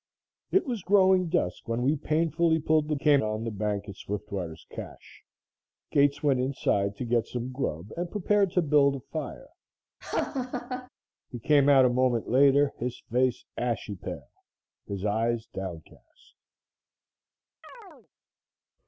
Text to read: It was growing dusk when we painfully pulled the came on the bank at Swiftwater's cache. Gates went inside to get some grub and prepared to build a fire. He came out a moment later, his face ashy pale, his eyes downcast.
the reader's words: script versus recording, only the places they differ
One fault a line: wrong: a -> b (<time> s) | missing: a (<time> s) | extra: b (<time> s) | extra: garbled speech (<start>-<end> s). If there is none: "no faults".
no faults